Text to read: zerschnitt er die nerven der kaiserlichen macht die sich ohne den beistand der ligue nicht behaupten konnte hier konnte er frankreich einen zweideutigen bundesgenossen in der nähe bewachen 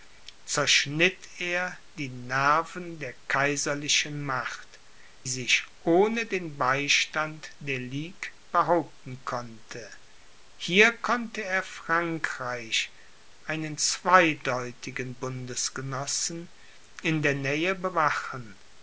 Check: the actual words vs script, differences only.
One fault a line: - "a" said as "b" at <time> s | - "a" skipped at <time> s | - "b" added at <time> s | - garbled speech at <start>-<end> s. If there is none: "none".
- "die" skipped at 4.8 s
- "nicht" skipped at 8.3 s